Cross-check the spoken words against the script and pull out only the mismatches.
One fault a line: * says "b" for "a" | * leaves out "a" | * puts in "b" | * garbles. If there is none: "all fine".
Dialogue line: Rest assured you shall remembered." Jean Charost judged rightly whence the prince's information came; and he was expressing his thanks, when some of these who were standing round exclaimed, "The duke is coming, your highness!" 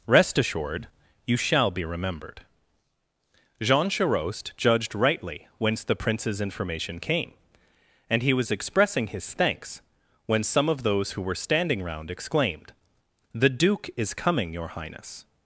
* puts in "be"
* says "those" for "these"